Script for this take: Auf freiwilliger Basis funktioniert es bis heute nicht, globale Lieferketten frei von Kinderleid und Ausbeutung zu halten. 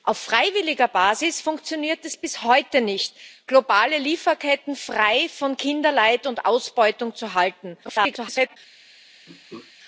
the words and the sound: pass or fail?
fail